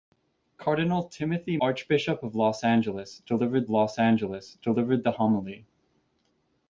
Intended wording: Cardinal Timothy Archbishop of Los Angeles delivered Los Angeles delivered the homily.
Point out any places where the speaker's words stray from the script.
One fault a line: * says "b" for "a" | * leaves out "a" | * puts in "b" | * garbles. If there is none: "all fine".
all fine